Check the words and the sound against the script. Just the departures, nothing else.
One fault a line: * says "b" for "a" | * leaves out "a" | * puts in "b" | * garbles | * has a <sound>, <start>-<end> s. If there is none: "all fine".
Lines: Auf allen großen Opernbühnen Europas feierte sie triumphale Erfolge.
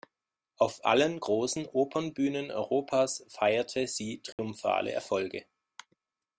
* has a dropout, 4.3-4.4 s